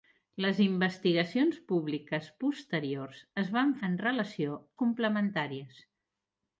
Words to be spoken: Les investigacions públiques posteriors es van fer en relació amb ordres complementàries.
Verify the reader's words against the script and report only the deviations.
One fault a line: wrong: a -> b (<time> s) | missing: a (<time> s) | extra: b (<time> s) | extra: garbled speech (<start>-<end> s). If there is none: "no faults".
missing: fer (3.8 s)
missing: amb ordres (4.6 s)